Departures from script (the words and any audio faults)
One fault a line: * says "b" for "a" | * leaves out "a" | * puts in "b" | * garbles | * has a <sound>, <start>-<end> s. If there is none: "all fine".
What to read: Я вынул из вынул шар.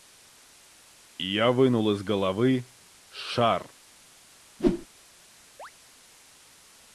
* says "головы" for "вынул"
* has a whoosh, 4.6-4.9 s
* has a chirp, 5.6-5.7 s